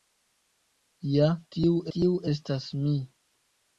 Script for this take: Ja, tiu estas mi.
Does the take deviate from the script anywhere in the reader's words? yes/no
yes